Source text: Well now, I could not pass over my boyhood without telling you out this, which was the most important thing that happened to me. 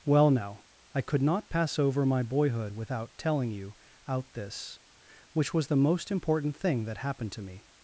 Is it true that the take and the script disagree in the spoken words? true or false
false